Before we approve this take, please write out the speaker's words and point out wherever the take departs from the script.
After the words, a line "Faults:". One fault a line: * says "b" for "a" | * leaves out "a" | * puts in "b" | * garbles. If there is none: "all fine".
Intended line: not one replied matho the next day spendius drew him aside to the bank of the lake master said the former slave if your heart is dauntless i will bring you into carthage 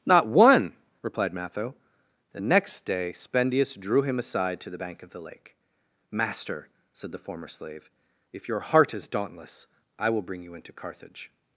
not one replied matho the next day spendius drew him aside to the bank of the lake master said the former slave if your heart is dauntless i will bring you into carthage
Faults:
all fine